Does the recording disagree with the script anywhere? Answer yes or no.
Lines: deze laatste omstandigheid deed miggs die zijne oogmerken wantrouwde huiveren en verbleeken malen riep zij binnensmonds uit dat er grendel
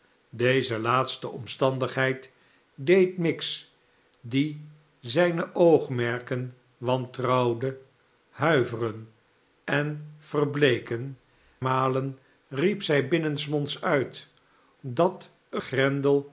no